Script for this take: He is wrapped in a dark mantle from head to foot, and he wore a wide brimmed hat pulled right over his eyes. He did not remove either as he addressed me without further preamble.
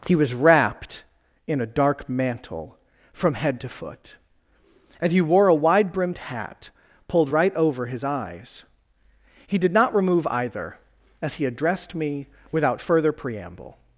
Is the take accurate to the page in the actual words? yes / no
no